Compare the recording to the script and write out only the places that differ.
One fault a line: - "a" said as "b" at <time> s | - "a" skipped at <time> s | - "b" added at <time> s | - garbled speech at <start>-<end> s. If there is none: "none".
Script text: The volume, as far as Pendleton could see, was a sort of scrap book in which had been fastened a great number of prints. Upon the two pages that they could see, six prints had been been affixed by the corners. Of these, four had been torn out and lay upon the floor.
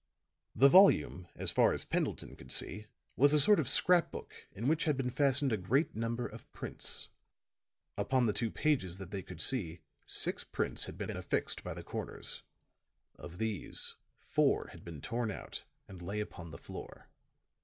none